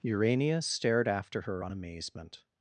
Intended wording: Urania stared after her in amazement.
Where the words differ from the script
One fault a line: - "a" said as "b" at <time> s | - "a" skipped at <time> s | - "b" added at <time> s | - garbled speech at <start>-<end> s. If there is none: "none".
- "in" said as "on" at 1.6 s